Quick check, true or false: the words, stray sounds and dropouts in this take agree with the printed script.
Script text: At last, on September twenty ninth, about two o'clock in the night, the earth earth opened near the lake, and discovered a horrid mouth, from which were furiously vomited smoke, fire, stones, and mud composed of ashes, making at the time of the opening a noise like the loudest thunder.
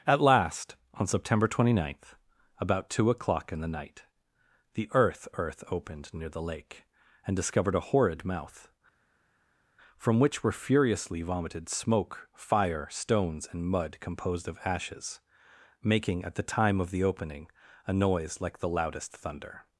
true